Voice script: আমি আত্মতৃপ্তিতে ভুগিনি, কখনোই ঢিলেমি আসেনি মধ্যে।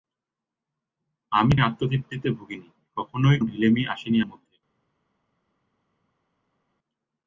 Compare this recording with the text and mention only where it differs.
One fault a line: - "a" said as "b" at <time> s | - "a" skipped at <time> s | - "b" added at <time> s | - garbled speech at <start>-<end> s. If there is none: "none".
none